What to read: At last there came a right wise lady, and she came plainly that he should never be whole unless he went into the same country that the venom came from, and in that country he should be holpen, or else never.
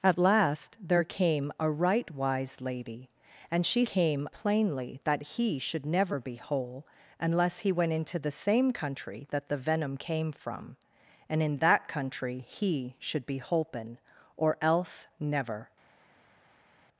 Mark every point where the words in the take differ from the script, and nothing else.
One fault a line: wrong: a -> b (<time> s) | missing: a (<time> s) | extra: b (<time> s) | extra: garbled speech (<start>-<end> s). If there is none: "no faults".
no faults